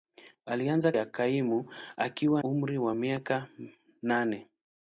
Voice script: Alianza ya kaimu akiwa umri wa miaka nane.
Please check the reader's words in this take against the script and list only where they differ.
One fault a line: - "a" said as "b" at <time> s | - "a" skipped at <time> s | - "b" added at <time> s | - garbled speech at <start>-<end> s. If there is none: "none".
none